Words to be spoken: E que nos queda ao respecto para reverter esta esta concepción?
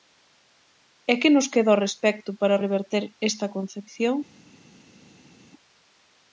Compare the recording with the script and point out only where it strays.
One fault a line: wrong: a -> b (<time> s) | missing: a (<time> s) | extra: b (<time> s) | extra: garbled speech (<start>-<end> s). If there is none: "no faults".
missing: esta (3.5 s)